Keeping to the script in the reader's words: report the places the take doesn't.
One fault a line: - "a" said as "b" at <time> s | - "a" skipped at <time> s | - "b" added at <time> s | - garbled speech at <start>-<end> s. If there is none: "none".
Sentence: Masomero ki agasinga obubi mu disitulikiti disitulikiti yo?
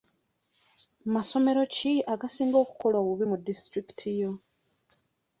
- "okukola" added at 2.6 s
- "disitulikiti" skipped at 4.1 s